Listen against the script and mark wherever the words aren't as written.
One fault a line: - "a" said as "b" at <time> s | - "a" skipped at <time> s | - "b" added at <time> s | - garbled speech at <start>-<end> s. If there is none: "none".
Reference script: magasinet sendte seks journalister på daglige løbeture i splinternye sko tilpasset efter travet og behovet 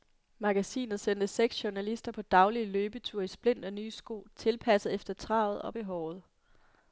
none